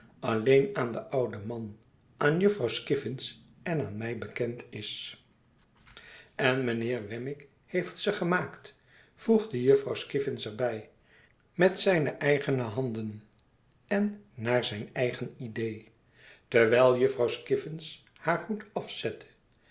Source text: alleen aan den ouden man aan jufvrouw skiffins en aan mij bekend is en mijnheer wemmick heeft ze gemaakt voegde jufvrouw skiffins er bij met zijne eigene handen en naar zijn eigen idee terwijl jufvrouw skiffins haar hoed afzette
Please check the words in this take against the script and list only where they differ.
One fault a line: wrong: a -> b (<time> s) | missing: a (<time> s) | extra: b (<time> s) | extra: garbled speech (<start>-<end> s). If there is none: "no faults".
no faults